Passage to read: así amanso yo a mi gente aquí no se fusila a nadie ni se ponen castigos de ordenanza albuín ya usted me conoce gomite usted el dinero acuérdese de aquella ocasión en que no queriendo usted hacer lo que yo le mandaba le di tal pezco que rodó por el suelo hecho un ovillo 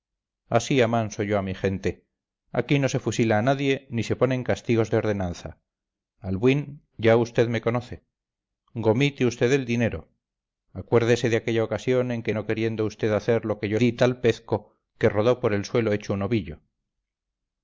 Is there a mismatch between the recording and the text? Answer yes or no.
yes